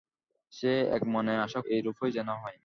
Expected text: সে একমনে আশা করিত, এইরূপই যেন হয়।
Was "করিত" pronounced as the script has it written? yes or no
no